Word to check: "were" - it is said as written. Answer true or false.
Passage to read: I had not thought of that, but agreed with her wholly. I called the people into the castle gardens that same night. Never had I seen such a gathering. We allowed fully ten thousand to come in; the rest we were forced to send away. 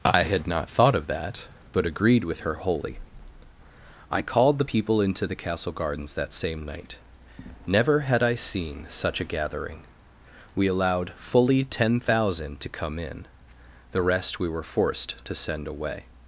true